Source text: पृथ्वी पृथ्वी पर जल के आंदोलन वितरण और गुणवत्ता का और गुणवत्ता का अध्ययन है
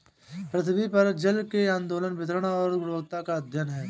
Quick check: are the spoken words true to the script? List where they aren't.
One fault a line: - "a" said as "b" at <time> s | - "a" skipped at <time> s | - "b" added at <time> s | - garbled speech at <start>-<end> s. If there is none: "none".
- "पृथ्वी" skipped at 0.9 s
- "और गुणवत्ता का" skipped at 3.4 s